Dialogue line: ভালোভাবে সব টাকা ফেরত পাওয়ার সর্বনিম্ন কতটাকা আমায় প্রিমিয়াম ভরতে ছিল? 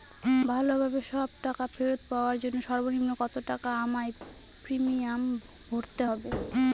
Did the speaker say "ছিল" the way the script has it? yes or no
no